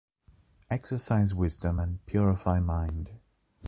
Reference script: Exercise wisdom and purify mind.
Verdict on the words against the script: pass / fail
pass